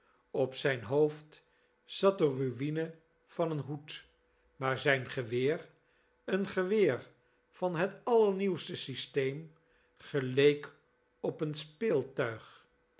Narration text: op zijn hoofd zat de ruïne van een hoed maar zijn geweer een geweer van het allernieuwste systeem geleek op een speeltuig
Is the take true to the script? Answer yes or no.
yes